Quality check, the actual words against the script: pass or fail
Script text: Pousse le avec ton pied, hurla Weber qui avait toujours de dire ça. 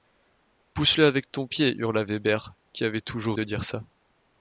pass